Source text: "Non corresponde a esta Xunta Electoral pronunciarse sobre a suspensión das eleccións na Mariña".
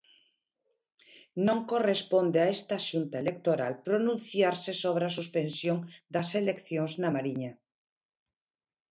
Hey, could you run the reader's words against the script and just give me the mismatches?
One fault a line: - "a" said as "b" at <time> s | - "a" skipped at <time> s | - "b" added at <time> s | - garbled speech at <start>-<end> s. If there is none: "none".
none